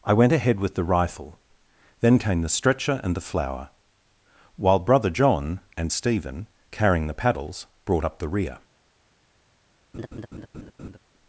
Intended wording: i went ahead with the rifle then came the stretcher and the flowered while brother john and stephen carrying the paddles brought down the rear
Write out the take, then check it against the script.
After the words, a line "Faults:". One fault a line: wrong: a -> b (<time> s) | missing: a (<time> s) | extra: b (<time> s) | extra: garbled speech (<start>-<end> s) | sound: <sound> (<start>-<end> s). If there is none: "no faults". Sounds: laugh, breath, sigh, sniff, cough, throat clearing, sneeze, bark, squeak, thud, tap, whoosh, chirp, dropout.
i went ahead with the rifle then came the stretcher and the flower while brother john and stephen carrying the paddles brought up the rear
Faults:
wrong: flowered -> flower (3.3 s)
wrong: down -> up (8.0 s)
sound: laugh (9.9-11.0 s)